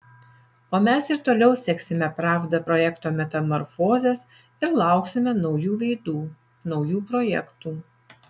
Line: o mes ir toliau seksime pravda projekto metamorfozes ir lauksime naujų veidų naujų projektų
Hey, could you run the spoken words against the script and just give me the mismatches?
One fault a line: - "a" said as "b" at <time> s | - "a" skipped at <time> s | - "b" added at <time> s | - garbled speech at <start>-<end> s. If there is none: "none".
none